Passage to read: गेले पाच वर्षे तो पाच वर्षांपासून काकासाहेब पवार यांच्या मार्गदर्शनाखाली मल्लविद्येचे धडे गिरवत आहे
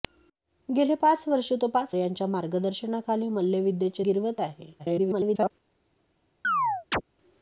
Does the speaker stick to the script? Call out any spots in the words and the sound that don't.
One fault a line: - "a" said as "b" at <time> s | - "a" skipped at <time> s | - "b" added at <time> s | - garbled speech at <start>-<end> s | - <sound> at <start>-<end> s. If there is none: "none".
- "वर्षांपासून काकासाहेब पवार" skipped at 1.9 s
- "धडे" skipped at 4.0 s
- garbled speech at 4.8-5.5 s
- chirp at 6.4-7.0 s